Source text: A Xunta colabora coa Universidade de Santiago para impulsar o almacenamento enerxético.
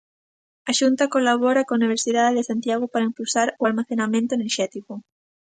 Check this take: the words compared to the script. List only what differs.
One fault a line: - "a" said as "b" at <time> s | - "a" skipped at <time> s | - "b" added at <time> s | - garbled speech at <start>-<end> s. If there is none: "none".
none